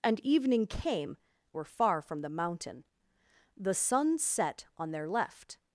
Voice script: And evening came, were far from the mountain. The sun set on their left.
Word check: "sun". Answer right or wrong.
right